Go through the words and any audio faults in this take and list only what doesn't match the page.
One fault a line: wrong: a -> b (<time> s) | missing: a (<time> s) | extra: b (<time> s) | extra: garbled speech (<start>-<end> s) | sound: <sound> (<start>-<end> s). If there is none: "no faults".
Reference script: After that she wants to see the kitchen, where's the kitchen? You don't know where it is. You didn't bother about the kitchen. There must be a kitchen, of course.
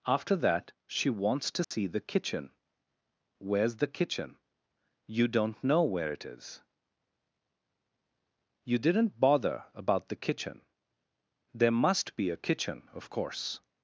sound: dropout (1.6-1.7 s)